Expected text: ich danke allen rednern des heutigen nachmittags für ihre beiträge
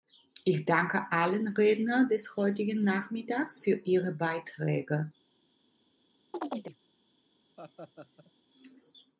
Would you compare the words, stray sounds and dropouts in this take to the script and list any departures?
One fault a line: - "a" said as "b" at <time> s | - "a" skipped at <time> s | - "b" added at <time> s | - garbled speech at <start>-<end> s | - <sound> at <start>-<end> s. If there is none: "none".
- chirp at 6.3-6.8 s
- laugh at 7.6-8.3 s